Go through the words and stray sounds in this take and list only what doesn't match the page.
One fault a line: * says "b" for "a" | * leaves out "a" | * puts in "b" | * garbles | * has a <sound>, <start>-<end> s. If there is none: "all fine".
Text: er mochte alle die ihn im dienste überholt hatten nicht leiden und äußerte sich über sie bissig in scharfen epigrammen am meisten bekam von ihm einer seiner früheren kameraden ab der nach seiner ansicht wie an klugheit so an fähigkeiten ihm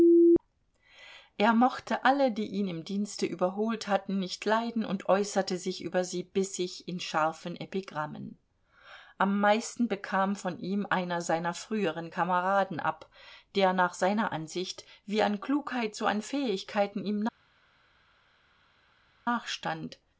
all fine